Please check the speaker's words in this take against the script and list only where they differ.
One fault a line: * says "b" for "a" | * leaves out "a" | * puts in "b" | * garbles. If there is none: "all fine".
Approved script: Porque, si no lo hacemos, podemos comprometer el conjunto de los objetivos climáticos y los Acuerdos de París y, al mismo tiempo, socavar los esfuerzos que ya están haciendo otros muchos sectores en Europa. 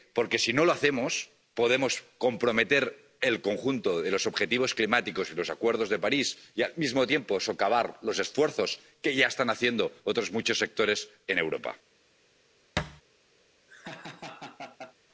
all fine